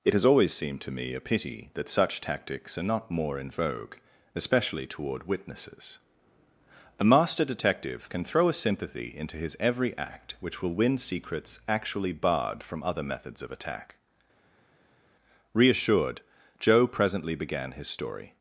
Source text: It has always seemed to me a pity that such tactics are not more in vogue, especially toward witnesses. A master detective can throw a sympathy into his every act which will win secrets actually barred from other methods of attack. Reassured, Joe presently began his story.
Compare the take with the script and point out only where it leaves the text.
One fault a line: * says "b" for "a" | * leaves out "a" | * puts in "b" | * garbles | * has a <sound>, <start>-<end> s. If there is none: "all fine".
all fine